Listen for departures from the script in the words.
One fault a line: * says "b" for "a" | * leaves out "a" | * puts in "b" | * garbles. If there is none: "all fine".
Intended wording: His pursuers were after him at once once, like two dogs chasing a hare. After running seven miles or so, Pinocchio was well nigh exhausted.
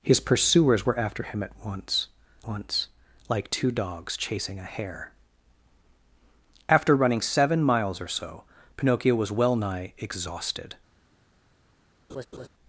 all fine